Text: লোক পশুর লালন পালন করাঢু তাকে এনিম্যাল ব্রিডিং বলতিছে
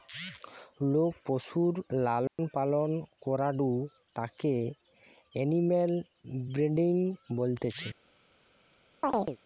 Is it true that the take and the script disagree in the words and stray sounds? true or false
true